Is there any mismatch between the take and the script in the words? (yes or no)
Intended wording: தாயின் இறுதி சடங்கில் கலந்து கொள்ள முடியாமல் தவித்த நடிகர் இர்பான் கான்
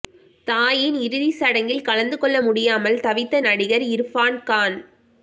no